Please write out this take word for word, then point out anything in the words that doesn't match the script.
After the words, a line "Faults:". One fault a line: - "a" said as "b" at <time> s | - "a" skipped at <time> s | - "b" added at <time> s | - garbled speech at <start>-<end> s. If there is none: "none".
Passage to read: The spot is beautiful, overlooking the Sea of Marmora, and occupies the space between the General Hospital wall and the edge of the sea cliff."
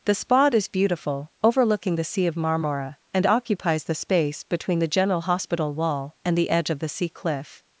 The spot is beautiful, overlooking the Sea of Marmora, and occupies the space between the General Hospital wall and the edge of the sea cliff."
Faults:
none